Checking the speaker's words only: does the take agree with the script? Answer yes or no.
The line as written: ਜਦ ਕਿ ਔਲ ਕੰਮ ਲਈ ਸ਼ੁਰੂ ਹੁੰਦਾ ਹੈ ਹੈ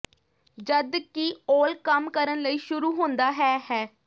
no